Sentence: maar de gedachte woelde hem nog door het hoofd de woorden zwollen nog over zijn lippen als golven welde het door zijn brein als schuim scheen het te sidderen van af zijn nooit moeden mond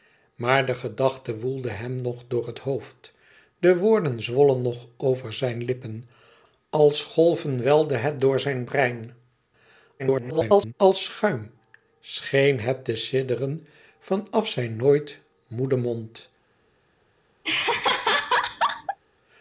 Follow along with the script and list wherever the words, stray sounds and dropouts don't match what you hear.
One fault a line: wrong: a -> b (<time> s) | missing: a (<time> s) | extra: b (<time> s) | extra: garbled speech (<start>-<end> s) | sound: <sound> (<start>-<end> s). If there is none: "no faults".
extra: garbled speech (10.0-10.7 s)
sound: laugh (17.4-19.0 s)